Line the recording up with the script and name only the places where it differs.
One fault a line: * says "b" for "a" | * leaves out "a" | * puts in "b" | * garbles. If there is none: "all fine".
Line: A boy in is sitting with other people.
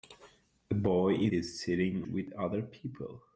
all fine